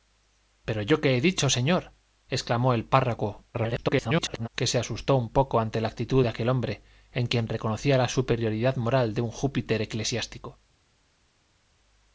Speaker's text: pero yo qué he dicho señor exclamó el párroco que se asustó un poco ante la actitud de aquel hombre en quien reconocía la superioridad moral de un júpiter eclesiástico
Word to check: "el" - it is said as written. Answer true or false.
true